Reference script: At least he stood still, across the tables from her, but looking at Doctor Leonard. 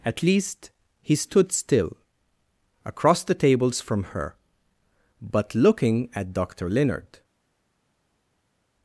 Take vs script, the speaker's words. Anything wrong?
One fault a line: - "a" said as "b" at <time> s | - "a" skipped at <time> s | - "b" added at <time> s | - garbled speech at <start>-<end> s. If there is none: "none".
none